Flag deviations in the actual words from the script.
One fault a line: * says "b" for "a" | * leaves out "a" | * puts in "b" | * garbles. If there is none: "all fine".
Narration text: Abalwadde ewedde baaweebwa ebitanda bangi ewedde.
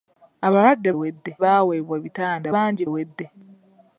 all fine